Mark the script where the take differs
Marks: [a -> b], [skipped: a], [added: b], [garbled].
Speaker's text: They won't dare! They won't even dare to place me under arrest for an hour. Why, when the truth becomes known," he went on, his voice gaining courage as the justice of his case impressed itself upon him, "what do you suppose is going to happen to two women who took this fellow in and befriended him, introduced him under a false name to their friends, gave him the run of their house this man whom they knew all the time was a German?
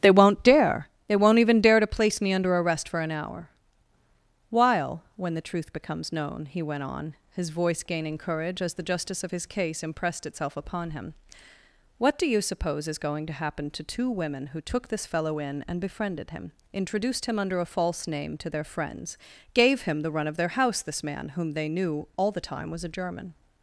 They won't dare! They won't even dare to place me under arrest for an hour. [Why, -> While] when the truth becomes known," he went on, his voice gaining courage as the justice of his case impressed itself upon him, "what do you suppose is going to happen to two women who took this fellow in and befriended him, introduced him under a false name to their friends, gave him the run of their house this man whom they knew all the time was a German?